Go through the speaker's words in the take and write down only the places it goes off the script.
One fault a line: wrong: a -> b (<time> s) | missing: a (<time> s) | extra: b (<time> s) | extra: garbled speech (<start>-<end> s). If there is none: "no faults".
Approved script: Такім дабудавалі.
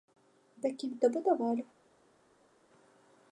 no faults